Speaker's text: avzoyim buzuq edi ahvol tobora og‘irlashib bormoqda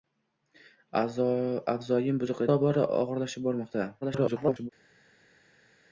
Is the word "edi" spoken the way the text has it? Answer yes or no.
no